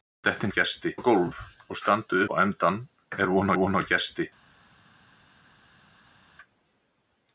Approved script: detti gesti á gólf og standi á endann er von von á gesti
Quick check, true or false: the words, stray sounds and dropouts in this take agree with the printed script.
true